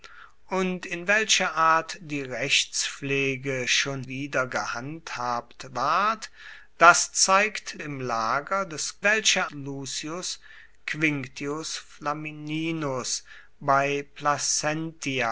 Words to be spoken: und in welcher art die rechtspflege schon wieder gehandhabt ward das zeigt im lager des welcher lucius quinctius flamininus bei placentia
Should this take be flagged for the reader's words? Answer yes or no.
no